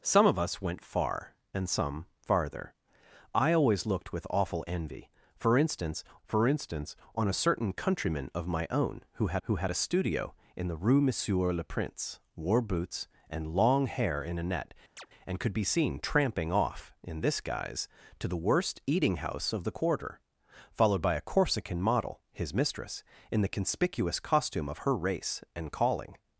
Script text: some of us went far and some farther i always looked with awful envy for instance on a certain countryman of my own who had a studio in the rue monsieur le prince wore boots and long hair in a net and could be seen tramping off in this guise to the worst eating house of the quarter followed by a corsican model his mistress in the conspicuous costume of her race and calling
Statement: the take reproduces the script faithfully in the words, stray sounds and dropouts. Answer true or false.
false